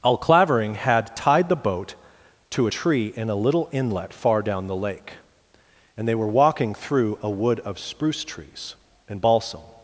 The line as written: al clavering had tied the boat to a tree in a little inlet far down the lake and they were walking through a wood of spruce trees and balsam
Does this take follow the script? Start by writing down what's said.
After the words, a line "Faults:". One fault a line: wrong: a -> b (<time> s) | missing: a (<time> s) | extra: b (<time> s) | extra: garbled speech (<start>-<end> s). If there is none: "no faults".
al clavering had tied the boat to a tree in a little inlet far down the lake and they were walking through a wood of spruce trees and balsam
Faults:
no faults